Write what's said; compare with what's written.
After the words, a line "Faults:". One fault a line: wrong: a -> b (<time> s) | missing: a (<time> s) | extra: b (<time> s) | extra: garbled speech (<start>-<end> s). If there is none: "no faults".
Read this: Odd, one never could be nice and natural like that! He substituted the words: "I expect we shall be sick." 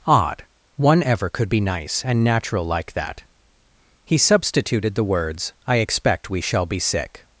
Odd, one ever could be nice and natural like that! He substituted the words: "I expect we shall be sick."
Faults:
wrong: never -> ever (1.0 s)